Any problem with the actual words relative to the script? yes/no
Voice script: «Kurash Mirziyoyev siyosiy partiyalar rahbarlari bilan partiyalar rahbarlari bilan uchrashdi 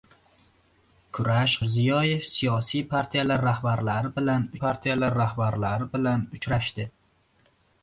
no